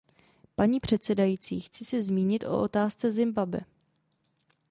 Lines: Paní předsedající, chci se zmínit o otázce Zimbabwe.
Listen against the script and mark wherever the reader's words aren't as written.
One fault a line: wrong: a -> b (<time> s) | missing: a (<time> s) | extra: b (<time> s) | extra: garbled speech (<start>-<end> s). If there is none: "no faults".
no faults